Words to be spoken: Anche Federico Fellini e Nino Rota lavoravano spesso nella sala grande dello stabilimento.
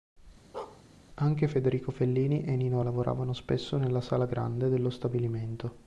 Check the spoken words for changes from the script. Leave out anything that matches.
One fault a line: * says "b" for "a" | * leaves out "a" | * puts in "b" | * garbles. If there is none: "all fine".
* leaves out "Rota"